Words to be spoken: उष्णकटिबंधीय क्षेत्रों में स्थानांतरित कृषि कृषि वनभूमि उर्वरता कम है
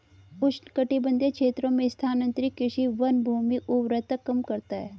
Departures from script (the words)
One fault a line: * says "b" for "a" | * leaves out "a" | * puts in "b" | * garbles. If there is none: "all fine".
* leaves out "कृषि"
* puts in "करता"